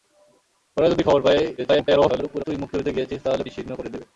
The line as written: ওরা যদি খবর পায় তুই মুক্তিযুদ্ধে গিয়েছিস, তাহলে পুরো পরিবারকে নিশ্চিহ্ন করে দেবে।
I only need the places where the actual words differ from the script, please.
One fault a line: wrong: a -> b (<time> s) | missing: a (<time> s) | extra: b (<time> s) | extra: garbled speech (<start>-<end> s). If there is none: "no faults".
extra: garbled speech (1.6-2.4 s)
missing: পুরো পরিবারকে (3.4 s)